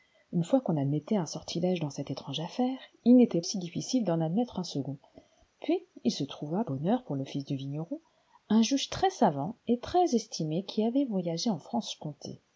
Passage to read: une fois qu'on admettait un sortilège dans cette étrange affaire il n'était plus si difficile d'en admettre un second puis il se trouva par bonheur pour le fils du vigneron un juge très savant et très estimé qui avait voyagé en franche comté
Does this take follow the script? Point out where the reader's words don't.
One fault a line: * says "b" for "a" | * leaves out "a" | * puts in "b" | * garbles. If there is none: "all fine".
* leaves out "plus"
* leaves out "par"